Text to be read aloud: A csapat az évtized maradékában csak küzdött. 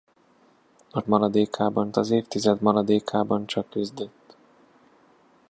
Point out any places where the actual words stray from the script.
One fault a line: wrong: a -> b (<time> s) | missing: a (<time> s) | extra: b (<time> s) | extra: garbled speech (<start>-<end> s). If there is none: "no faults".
wrong: csapat -> maradékában (1.1 s)